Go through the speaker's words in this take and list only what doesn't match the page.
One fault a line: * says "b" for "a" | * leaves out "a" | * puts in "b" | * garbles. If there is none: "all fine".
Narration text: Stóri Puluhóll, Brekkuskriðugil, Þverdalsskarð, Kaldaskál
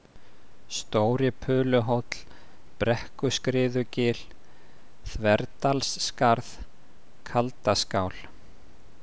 all fine